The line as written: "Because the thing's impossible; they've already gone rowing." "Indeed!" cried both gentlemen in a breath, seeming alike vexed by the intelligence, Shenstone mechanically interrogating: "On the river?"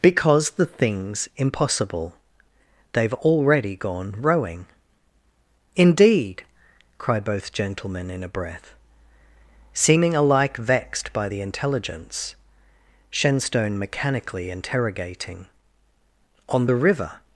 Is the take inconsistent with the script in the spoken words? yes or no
no